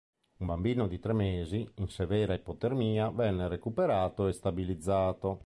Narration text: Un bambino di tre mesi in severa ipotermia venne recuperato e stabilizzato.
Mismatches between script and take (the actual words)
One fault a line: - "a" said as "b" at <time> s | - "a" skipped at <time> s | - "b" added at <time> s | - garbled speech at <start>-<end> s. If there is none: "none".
none